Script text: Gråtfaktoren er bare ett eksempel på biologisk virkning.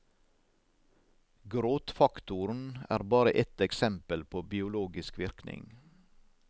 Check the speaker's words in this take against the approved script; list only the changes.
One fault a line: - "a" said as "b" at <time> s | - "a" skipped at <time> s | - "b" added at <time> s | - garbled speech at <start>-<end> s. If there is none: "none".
none